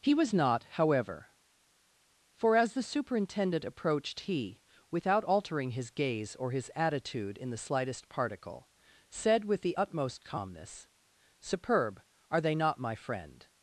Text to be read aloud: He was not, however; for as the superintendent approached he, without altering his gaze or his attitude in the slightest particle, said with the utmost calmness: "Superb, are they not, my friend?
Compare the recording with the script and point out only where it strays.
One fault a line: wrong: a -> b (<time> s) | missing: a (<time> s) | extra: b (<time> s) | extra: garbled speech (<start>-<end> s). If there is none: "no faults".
no faults